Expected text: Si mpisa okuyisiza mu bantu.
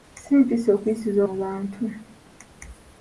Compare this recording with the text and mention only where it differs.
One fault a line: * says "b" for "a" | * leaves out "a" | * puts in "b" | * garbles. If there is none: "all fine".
all fine